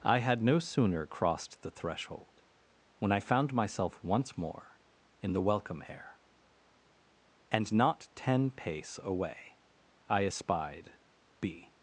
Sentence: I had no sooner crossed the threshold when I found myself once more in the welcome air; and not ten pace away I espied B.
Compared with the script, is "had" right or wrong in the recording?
right